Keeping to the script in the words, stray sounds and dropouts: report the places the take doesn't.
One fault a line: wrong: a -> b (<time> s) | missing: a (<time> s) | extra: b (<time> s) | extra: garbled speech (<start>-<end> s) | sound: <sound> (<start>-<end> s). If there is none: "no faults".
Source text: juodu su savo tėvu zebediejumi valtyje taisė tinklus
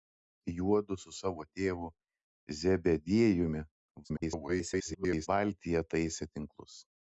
extra: garbled speech (4.0-5.3 s)